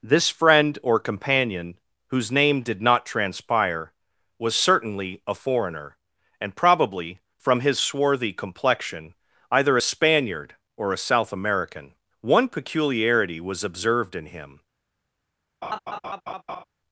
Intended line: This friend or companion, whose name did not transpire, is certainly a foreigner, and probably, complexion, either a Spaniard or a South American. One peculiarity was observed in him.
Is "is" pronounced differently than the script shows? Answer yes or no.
yes